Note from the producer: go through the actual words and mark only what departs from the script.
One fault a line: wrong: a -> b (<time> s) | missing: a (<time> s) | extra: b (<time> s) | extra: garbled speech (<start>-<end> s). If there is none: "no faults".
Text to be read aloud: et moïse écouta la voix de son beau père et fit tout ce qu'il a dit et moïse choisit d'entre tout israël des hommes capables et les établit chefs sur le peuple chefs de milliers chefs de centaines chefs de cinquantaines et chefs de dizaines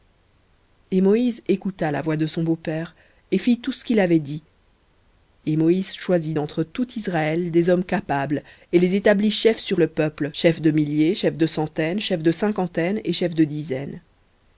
wrong: a -> avait (4.0 s)